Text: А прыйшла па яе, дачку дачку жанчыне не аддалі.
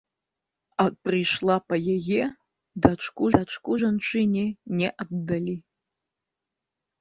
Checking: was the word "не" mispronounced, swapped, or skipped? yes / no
no